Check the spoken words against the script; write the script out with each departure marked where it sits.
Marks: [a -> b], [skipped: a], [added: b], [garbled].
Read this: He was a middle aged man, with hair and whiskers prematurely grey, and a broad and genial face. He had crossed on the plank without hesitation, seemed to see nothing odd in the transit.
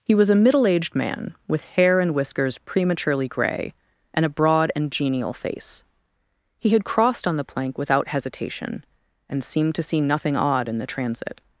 He was a middle aged man, with hair and whiskers prematurely grey, and a broad and genial face. He had crossed on the plank without hesitation, [added: and] seemed to see nothing odd in the transit.